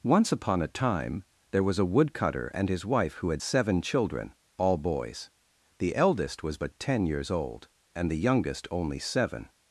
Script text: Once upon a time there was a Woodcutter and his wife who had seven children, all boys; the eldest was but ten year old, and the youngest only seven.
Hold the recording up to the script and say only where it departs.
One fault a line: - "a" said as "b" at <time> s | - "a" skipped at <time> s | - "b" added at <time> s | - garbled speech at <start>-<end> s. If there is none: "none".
- "year" said as "years" at 7.1 s